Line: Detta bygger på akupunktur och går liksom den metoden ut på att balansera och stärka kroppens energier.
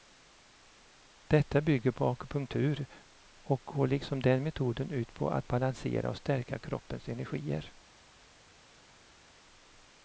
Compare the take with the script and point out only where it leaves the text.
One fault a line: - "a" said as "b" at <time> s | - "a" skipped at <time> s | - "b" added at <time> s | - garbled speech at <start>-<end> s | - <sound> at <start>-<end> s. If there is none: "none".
none